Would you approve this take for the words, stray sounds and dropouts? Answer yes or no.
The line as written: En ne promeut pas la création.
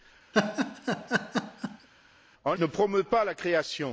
no